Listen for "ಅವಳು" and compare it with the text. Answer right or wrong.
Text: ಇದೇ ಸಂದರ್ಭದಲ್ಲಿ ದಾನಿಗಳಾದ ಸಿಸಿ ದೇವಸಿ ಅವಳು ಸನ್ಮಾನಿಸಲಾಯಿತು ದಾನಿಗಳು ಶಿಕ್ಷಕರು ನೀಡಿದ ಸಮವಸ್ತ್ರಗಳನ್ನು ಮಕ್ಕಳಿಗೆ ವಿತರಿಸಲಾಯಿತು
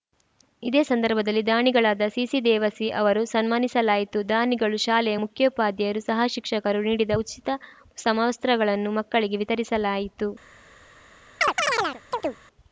wrong